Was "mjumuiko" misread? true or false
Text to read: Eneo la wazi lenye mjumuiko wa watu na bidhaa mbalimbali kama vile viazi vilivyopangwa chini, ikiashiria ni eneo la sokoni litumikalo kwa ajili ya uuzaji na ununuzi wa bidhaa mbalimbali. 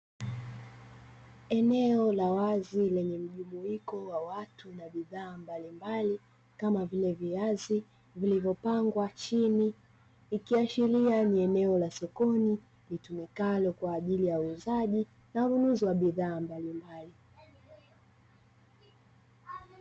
false